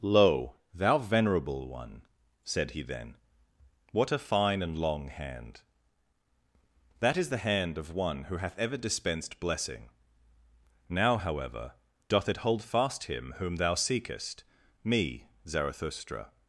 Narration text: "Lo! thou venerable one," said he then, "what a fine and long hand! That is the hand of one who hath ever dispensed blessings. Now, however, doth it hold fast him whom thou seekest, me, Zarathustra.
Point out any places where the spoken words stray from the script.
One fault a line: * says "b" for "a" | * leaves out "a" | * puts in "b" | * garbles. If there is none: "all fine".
* says "blessing" for "blessings"